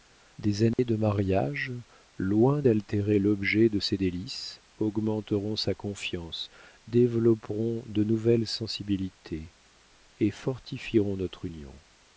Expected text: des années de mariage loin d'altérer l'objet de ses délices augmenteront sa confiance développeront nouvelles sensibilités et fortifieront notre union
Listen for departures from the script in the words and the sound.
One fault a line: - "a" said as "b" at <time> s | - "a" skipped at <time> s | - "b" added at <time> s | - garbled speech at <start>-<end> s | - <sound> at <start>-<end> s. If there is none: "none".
- dropout at 0.7-0.8 s
- "de" added at 7.9 s